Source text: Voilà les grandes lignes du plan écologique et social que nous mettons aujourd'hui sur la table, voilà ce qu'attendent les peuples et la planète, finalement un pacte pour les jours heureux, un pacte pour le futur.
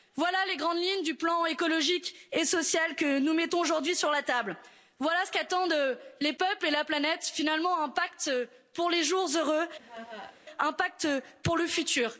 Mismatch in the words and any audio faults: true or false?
true